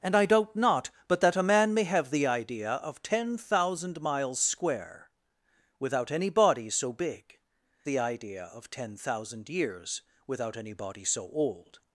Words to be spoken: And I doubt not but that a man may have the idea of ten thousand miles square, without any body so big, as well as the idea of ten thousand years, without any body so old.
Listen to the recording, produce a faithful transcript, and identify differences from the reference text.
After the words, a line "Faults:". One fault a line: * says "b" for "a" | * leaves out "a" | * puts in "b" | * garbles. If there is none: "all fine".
And I doubt not but that a man may have the idea of ten thousand miles square, without any body so big, the idea of ten thousand years, without any body so old.
Faults:
* leaves out "as well as"